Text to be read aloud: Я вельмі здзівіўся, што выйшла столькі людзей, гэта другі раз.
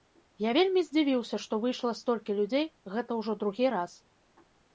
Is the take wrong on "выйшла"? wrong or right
right